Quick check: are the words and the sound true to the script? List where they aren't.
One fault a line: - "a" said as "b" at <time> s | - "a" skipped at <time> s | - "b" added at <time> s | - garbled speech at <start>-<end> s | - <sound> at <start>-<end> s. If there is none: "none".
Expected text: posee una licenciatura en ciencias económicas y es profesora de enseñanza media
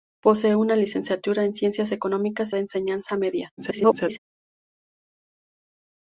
- "y es profesora" skipped at 2.5 s
- garbled speech at 3.6-4.2 s